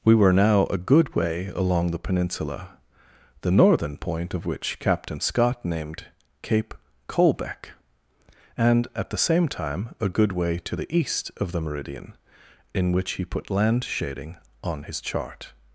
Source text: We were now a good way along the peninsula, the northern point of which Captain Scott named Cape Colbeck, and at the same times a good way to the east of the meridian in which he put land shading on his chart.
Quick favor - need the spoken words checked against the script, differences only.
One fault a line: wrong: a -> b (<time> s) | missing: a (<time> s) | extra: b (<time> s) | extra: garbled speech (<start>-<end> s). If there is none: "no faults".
wrong: times -> time (9.5 s)